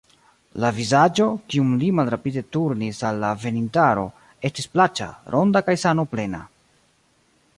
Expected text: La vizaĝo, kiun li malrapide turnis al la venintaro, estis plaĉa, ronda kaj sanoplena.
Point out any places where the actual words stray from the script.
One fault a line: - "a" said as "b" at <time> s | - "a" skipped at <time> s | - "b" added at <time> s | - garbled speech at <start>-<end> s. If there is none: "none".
none